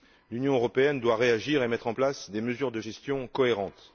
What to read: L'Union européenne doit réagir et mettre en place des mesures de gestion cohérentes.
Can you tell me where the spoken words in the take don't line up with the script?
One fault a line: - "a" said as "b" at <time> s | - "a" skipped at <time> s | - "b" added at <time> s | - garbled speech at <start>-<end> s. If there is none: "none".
none